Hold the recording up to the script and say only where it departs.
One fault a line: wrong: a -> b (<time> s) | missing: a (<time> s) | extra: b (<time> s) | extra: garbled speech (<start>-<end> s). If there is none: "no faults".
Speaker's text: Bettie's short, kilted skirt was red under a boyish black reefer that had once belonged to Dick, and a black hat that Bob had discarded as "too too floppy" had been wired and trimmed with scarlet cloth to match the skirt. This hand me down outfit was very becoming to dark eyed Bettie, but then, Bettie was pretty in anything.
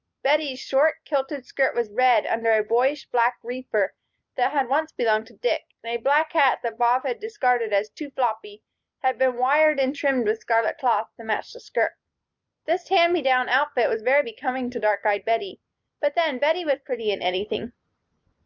missing: too (8.1 s)